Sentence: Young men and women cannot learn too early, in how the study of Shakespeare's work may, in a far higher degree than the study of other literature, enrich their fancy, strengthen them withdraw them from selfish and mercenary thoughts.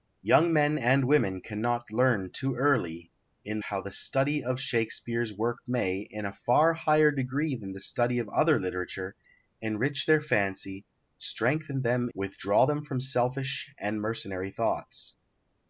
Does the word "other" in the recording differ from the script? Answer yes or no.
no